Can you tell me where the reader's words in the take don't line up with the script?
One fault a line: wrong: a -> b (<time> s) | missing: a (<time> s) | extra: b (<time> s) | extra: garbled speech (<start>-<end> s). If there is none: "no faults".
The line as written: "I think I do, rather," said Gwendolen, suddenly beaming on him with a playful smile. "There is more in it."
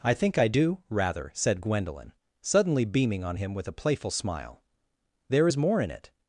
no faults